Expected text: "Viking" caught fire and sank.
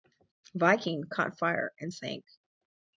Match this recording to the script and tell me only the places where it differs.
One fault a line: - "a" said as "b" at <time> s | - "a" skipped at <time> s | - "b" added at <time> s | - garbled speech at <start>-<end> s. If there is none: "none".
none